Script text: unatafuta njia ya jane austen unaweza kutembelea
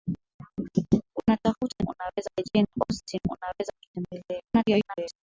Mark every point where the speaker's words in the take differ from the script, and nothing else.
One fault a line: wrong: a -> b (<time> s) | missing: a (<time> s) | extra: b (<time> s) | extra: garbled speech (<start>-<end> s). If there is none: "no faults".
wrong: njia -> unaweza (1.9 s)
extra: garbled speech (4.5-5.2 s)